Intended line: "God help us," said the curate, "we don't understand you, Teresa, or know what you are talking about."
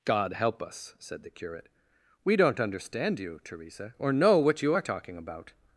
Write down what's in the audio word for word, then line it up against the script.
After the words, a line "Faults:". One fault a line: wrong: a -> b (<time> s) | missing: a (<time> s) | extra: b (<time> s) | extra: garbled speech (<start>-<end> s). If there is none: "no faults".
"God help us," said the curate, "we don't understand you, Teresa, or know what you are talking about."
Faults:
no faults